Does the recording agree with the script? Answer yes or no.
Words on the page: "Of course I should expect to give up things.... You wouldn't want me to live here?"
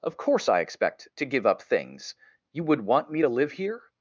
no